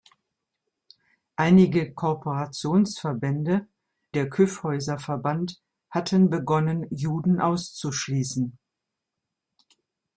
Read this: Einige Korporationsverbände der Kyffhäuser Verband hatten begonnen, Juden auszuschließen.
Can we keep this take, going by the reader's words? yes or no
yes